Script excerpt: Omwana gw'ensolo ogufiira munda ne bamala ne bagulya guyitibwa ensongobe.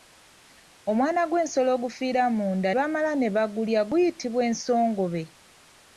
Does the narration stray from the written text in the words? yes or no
yes